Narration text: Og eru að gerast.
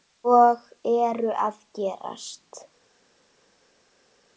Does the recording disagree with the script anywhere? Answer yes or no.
no